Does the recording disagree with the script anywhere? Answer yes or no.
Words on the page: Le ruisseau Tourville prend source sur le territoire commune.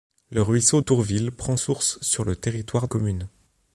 no